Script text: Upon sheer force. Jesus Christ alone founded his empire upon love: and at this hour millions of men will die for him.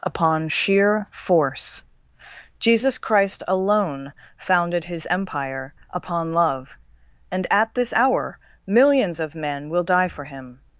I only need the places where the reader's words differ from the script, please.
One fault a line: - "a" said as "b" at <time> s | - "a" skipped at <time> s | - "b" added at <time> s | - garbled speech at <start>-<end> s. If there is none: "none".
none